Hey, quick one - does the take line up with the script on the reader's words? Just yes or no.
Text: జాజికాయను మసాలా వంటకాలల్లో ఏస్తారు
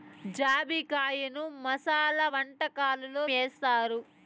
yes